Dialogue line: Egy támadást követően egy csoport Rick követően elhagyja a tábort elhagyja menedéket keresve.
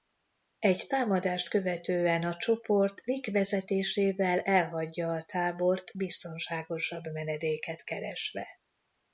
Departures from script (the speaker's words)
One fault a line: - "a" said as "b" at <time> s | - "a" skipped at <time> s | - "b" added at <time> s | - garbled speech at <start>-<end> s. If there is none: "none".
- "egy" said as "a" at 2.2 s
- "követően" said as "vezetésével" at 3.3 s
- "elhagyja" said as "biztonságosabb" at 6.0 s